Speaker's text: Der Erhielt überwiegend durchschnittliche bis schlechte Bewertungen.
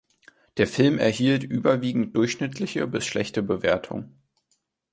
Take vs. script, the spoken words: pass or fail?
fail